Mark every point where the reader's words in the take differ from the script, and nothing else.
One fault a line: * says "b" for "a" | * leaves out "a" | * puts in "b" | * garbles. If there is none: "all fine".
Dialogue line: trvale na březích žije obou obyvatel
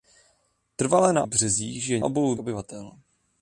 all fine